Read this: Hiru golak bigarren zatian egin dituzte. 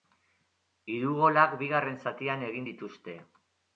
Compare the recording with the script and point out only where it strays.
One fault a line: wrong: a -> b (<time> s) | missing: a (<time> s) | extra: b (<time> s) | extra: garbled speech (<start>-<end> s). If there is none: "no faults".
no faults